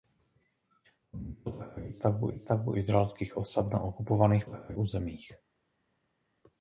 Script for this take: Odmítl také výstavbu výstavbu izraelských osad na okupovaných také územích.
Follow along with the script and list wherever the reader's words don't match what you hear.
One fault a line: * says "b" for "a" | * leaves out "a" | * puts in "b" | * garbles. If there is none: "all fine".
all fine